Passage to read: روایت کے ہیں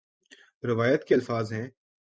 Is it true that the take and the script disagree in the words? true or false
true